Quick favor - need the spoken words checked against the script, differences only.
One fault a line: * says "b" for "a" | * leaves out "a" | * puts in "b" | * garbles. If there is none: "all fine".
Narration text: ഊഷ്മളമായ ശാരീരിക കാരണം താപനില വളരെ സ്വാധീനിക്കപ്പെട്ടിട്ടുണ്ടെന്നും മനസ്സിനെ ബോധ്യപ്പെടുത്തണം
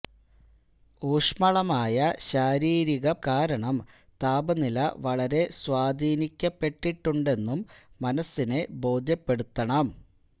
all fine